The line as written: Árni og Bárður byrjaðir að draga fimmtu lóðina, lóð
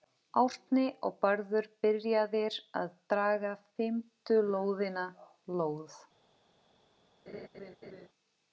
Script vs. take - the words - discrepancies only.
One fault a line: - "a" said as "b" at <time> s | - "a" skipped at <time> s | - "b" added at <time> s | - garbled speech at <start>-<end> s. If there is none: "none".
none